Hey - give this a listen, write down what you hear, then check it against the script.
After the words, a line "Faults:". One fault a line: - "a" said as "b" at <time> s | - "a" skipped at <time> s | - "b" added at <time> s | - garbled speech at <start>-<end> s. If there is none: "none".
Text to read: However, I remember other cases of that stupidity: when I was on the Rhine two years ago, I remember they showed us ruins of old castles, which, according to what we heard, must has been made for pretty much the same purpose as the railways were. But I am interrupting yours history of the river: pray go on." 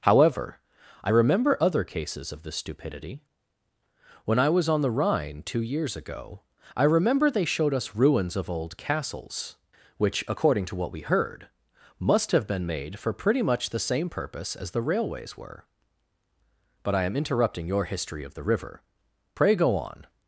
However, I remember other cases of this stupidity: when I was on the Rhine two years ago, I remember they showed us ruins of old castles, which, according to what we heard, must have been made for pretty much the same purpose as the railways were. But I am interrupting your history of the river: pray go on."
Faults:
- "that" said as "this" at 2.4 s
- "has" said as "have" at 12.3 s
- "yours" said as "your" at 17.7 s